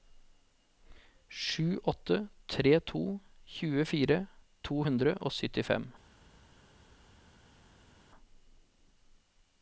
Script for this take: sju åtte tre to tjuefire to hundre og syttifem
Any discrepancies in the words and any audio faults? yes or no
no